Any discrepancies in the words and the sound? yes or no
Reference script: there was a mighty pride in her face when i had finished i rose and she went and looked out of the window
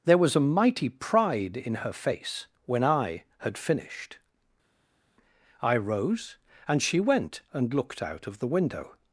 no